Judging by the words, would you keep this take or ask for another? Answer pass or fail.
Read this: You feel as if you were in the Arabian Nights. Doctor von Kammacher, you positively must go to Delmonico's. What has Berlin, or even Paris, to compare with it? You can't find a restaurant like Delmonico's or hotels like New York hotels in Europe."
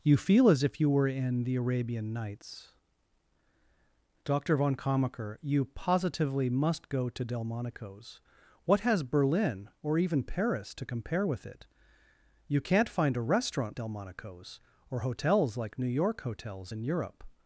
fail